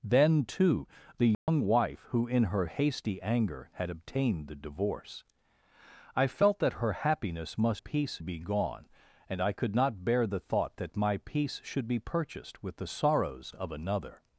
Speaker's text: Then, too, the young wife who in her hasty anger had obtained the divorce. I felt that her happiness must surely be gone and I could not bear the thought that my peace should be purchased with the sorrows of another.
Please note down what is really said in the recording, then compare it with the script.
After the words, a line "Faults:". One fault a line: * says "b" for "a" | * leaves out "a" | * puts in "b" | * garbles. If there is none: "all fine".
Then, too, the young wife who in her hasty anger had obtained the divorce. I felt that her happiness must peace be gone and I could not bear the thought that my peace should be purchased with the sorrows of another.
Faults:
* says "peace" for "surely"